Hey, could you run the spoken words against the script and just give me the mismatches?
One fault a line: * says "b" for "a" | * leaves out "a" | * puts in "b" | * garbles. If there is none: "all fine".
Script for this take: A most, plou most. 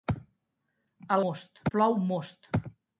all fine